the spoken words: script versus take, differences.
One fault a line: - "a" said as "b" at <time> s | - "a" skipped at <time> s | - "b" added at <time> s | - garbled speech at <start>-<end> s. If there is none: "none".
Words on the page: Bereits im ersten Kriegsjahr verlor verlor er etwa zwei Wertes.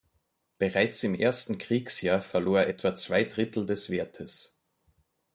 - "verlor" skipped at 2.6 s
- "Drittel des" added at 3.2 s